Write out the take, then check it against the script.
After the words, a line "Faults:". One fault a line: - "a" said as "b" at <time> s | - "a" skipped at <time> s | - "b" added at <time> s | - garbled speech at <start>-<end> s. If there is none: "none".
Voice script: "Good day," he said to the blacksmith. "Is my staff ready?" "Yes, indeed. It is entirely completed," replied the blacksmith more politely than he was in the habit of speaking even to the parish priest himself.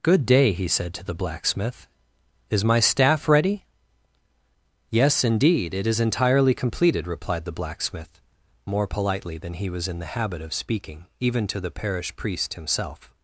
"Good day," he said to the blacksmith. "Is my staff ready?" "Yes, indeed. It is entirely completed," replied the blacksmith more politely than he was in the habit of speaking even to the parish priest himself.
Faults:
none